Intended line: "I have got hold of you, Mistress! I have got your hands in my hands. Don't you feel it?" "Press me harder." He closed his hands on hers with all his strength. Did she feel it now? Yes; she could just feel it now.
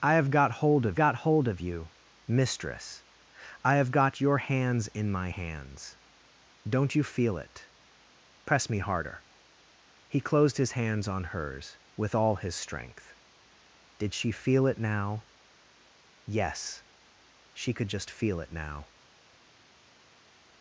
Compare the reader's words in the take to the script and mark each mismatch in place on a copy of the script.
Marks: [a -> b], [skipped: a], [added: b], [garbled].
"I have got hold of [added: got hold of] you, Mistress! I have got your hands in my hands. Don't you feel it?" "Press me harder." He closed his hands on hers with all his strength. Did she feel it now? Yes; she could just feel it now.